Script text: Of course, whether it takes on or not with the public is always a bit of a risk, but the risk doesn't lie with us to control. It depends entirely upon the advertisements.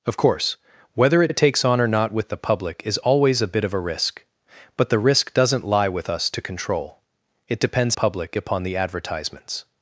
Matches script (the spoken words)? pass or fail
fail